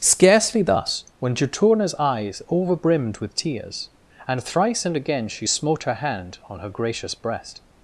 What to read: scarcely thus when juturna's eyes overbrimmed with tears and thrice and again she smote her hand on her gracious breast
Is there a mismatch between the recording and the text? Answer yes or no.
no